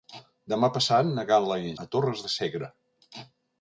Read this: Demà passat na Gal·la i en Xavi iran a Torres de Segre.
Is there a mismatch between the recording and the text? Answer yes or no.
yes